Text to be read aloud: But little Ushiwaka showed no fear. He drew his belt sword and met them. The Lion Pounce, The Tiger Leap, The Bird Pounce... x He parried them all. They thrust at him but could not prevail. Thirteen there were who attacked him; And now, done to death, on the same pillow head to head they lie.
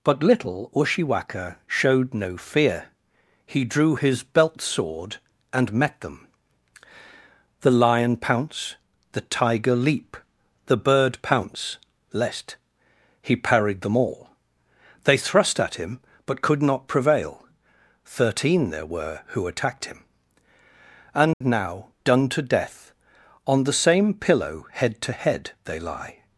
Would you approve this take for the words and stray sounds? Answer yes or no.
no